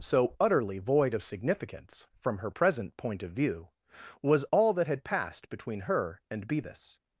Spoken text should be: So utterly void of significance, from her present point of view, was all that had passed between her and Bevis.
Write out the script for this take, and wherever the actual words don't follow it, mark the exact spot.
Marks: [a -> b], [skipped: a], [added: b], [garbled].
So utterly void of significance, from her present point of view, was all that had passed between her and Bevis.